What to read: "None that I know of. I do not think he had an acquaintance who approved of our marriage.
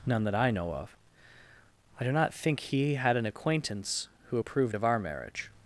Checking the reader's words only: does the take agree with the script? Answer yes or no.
yes